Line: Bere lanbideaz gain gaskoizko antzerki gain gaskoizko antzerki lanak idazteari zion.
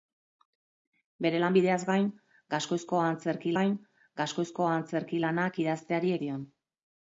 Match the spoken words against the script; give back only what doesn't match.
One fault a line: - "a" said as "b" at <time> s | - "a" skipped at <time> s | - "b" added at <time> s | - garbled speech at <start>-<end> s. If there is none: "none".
none